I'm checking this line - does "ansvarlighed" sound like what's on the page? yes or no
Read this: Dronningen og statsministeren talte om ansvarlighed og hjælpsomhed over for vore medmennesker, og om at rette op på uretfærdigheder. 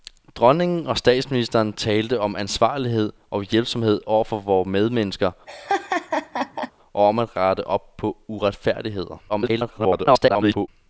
yes